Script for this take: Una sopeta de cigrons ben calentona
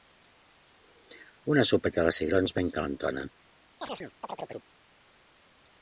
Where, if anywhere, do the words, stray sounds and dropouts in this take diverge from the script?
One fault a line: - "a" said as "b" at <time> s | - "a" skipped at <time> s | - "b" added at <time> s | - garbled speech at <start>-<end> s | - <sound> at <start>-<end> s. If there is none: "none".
- chirp at 3.8-4.7 s